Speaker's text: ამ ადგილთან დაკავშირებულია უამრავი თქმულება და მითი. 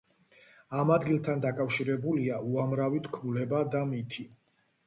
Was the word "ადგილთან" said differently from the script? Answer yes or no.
no